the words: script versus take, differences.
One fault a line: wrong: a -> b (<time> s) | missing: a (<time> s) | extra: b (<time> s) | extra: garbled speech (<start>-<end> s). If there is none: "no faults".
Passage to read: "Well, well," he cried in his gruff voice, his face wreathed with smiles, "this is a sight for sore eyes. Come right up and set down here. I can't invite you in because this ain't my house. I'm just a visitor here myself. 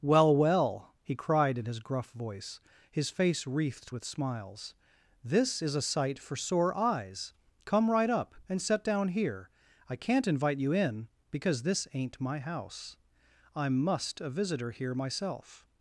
wrong: just -> must (13.8 s)